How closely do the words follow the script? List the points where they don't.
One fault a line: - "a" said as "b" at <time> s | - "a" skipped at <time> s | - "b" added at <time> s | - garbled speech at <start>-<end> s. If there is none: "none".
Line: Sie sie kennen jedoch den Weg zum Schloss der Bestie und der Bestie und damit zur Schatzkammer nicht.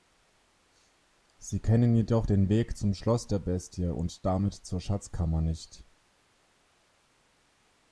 - "sie" skipped at 1.6 s
- "der Bestie und" skipped at 4.2 s